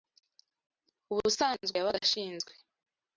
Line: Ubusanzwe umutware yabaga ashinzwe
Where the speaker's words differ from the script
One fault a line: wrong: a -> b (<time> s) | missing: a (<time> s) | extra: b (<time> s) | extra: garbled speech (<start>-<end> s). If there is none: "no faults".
missing: umutware (1.8 s)